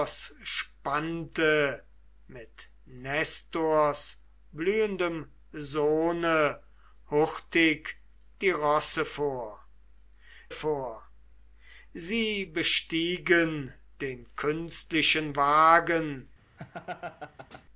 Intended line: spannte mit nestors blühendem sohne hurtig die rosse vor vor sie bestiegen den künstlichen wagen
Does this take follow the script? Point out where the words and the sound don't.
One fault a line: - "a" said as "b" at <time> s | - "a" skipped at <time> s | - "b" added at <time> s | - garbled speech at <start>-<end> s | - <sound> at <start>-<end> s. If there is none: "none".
- laugh at 16.6-17.6 s